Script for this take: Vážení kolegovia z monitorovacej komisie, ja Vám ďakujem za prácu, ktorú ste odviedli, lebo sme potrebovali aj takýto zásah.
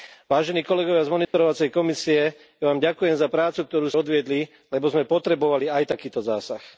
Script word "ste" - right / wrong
wrong